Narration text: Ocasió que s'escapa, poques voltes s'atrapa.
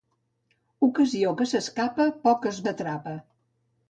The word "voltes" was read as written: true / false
false